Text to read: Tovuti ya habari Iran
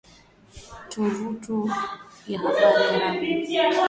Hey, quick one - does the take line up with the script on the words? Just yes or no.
no